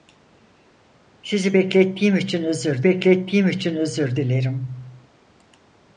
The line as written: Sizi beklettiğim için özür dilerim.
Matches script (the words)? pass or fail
fail